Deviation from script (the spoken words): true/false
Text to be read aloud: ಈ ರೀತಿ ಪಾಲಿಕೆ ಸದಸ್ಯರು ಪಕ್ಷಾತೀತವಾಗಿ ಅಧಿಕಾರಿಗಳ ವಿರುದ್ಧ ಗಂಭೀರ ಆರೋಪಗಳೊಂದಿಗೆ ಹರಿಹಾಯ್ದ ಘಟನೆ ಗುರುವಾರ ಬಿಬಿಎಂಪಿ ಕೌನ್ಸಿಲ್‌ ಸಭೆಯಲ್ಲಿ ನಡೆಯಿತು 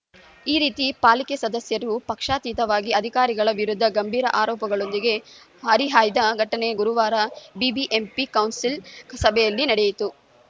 false